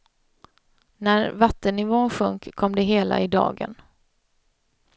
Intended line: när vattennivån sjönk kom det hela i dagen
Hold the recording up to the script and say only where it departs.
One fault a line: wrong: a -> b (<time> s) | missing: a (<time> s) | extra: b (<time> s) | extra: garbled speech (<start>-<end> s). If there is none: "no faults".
no faults